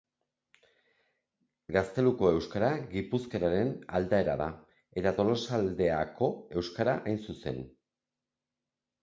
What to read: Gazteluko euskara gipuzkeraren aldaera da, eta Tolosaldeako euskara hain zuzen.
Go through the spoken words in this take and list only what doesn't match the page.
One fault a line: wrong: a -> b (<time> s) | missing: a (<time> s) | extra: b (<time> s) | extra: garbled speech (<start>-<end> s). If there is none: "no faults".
no faults